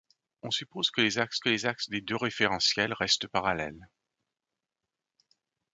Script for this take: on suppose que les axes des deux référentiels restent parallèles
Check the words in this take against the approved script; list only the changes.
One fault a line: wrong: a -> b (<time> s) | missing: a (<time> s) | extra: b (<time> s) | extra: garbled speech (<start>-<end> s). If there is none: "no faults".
extra: que les axes (1.4 s)